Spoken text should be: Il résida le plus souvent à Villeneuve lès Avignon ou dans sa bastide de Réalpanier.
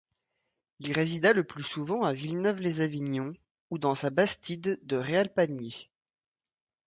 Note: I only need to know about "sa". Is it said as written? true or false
true